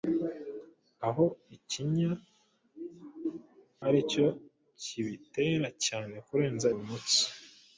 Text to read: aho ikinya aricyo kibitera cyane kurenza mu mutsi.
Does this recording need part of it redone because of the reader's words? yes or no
no